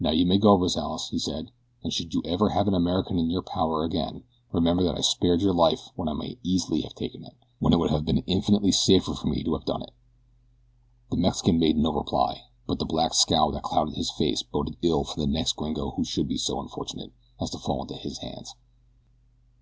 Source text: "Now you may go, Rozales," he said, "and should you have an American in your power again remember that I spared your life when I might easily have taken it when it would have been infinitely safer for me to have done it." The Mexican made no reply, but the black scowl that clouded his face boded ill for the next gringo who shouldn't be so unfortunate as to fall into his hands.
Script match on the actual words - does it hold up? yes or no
no